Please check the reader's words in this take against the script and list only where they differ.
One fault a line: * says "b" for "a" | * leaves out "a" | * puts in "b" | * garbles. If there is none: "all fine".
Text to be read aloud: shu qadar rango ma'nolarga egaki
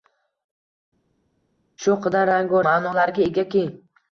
all fine